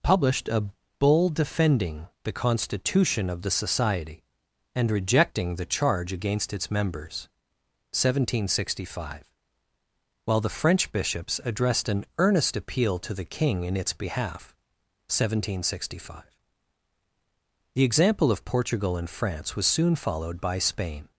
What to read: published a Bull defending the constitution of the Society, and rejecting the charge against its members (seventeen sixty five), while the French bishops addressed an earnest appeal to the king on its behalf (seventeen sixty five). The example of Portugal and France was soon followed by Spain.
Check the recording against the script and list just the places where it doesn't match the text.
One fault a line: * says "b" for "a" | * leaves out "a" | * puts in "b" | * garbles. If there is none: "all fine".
* says "in" for "on"